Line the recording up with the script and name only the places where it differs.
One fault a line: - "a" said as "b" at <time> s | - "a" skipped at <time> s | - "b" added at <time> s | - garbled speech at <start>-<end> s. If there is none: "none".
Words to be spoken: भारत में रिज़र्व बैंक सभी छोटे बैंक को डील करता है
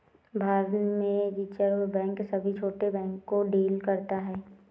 none